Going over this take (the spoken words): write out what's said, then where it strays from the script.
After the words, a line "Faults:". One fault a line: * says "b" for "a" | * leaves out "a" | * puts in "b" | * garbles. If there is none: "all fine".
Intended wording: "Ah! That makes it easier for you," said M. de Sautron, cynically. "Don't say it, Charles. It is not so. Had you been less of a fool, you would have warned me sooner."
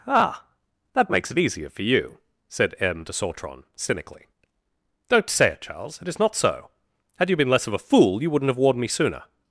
"Ah! That makes it easier for you," said M. de Sautron, cynically. "Don't say it, Charles. It is not so. Had you been less of a fool, you wouldn't have warned me sooner."
Faults:
* says "wouldn't" for "would"